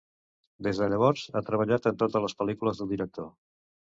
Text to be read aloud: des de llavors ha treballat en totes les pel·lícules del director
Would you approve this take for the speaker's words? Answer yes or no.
yes